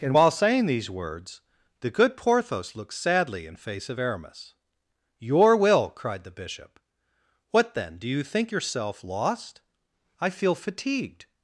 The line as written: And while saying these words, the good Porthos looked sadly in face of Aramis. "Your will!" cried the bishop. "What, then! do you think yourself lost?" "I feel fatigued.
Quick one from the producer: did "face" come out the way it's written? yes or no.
yes